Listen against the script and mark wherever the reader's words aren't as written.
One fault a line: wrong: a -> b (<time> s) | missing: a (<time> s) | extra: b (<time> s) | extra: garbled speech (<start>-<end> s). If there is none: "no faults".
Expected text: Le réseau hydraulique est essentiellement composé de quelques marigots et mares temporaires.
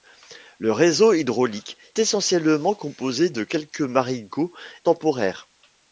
missing: est (1.8 s)
missing: et mares (4.5 s)